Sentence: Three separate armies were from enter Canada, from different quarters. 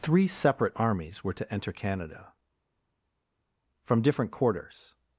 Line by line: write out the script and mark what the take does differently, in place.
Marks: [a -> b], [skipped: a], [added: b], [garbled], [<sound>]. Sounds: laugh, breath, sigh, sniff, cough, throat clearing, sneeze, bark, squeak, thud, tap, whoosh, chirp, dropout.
Three separate armies were [from -> to] enter Canada, from different quarters.